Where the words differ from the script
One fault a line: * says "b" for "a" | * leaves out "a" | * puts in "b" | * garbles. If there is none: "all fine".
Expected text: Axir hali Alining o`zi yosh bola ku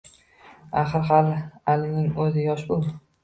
* leaves out "bola"